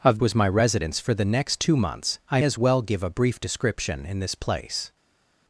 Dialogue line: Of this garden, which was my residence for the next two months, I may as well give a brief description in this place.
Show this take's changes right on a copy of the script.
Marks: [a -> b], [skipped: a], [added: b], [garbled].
Of [skipped: this garden, which] was my residence for the next two months, I [skipped: may] as well give a brief description in this place.